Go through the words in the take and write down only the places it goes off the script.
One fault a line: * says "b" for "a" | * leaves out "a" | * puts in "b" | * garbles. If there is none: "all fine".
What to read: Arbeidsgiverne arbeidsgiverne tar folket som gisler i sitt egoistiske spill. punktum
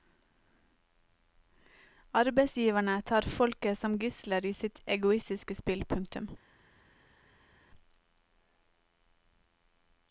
* leaves out "arbeidsgiverne"